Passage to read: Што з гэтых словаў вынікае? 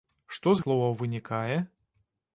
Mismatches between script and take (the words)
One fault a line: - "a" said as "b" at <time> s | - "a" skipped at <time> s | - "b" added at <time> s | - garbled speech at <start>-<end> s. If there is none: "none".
- "гэтых" skipped at 0.6 s